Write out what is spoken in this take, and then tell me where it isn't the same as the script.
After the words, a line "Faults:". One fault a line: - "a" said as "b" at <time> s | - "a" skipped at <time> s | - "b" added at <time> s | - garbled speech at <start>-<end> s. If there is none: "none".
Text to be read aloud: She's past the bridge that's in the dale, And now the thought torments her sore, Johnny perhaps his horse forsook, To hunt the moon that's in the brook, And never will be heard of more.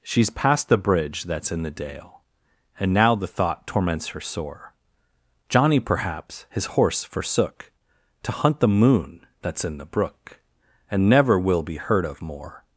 She's past the bridge that's in the dale, And now the thought torments her sore, Johnny perhaps his horse forsook, To hunt the moon that's in the brook, And never will be heard of more.
Faults:
none